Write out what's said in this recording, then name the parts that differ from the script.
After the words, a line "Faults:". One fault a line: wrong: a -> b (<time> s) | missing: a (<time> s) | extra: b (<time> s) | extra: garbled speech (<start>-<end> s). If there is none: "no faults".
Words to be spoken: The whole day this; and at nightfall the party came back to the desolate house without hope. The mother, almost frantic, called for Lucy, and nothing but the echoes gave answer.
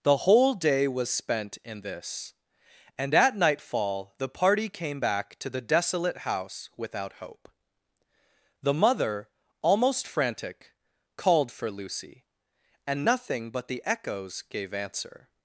The whole day was spent in this; and at nightfall the party came back to the desolate house without hope. The mother, almost frantic, called for Lucy, and nothing but the echoes gave answer.
Faults:
extra: was spent in (0.9 s)